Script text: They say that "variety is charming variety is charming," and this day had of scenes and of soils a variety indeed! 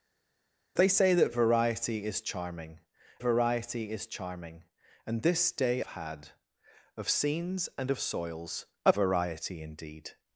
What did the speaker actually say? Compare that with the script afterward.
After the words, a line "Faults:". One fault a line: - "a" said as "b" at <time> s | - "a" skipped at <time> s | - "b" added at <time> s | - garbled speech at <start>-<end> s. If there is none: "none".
They say that "variety is charming variety is charming," and this day had of scenes and of soils a variety indeed!
Faults:
none